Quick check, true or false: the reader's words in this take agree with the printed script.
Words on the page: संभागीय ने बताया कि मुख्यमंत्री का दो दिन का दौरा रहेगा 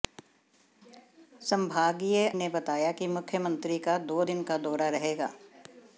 true